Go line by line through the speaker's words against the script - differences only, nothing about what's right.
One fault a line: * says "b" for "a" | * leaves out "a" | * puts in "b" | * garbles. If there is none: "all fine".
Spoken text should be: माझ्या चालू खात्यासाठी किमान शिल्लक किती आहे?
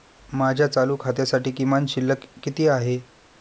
all fine